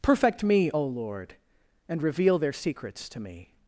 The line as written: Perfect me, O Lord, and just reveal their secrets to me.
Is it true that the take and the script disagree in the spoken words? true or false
true